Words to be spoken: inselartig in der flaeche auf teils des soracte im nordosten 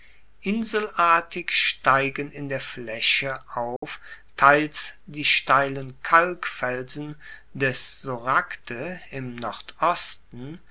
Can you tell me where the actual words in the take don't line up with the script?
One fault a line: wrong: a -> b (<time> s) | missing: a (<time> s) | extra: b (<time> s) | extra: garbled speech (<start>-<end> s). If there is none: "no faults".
extra: steigen (1.5 s)
extra: die steilen kalkfelsen (5.0 s)